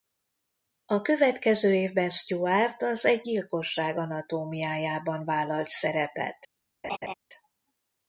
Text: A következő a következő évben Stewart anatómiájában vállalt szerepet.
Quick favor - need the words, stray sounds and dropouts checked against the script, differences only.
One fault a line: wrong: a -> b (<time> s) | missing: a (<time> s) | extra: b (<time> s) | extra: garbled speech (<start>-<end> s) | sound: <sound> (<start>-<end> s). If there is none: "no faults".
wrong: a következő évben Stewart -> évben Stewart az Egy gyilkosság (1.7 s)
sound: laugh (6.8-7.1 s)